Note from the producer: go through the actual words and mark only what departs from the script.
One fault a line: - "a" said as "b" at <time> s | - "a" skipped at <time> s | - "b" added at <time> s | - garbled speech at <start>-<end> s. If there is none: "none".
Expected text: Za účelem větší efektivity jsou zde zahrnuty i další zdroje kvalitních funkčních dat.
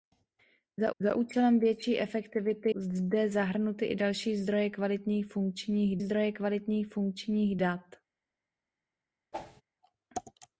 - "za" added at 1.0 s
- "jsou" skipped at 2.7 s
- "zdroje kvalitních funkčních" added at 6.0 s